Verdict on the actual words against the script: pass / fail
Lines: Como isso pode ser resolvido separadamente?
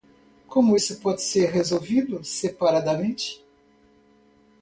pass